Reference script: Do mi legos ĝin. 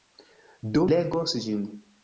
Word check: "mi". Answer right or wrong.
wrong